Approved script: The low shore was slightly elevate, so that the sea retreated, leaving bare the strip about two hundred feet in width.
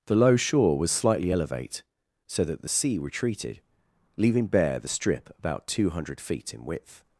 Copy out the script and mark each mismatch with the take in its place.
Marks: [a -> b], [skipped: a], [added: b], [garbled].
The low shore was slightly elevate, so that the sea retreated, leaving bare the strip about two hundred feet in width.